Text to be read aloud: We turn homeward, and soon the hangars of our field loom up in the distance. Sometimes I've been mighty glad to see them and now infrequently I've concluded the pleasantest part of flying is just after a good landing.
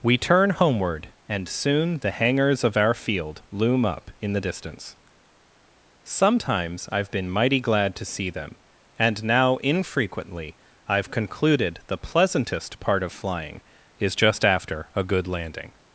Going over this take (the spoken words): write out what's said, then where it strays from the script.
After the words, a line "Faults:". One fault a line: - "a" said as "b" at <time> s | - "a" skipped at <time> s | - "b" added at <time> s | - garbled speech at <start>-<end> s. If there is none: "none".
We turn homeward, and soon the hangars of our field loom up in the distance. Sometimes I've been mighty glad to see them and now infrequently I've concluded the pleasantest part of flying is just after a good landing.
Faults:
none